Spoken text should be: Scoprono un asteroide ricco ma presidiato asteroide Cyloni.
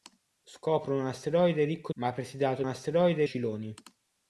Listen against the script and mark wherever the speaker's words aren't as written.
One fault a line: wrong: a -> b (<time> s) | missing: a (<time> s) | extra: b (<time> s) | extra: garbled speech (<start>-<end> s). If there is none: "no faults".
no faults